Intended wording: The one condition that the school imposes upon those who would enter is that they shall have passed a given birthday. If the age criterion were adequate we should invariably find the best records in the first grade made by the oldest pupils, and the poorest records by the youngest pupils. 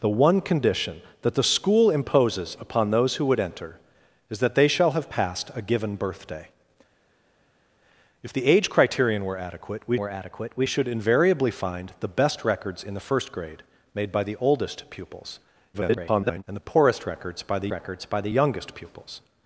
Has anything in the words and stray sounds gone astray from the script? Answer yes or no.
yes